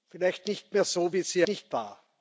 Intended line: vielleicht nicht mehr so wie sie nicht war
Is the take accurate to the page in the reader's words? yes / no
yes